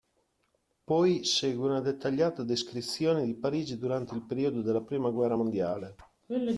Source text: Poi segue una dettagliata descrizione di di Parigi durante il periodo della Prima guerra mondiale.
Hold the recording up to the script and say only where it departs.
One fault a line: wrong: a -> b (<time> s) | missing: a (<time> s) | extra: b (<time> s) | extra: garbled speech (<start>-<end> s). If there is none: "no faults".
missing: di (3.4 s)